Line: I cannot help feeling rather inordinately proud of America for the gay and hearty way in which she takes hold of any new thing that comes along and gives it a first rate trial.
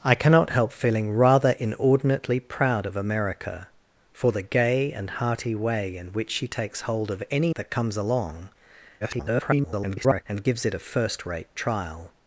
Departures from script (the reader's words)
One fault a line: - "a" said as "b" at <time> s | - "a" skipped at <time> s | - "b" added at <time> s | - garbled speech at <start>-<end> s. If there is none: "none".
- "new thing" skipped at 7.5 s
- garbled speech at 9.0-10.2 s